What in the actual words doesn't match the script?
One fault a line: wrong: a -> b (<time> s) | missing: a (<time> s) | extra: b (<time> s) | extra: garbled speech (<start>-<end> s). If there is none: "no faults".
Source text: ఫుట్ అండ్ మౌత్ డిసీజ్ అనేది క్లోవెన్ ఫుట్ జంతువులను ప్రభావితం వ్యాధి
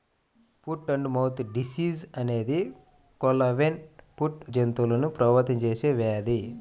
extra: చేసే (5.6 s)